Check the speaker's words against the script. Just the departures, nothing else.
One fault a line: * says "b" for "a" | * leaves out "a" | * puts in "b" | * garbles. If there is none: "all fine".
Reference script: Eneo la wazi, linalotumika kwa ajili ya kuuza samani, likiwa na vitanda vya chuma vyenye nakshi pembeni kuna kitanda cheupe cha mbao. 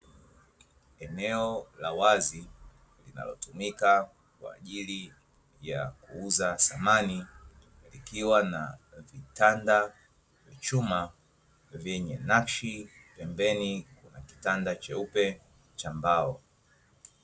* leaves out "vya"